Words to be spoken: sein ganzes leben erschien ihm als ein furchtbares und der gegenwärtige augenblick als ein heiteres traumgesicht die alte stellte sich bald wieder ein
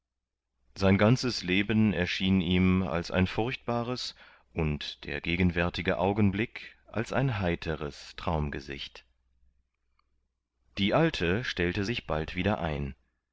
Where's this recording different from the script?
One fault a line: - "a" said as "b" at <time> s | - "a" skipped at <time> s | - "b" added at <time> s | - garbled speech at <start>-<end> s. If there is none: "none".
none